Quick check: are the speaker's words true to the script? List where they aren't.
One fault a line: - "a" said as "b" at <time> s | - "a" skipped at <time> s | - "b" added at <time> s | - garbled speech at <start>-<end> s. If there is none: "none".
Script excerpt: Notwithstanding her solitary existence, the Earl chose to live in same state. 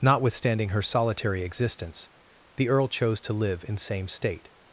none